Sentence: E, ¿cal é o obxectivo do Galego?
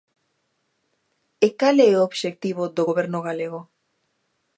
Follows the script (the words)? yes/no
no